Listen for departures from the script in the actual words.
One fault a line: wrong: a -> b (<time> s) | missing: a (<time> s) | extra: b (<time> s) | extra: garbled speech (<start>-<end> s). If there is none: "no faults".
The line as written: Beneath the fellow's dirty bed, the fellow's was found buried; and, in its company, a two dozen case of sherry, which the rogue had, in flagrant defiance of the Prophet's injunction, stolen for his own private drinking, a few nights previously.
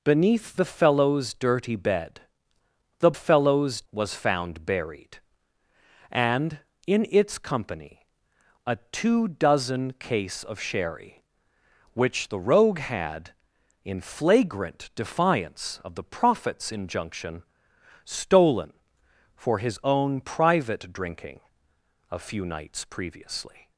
no faults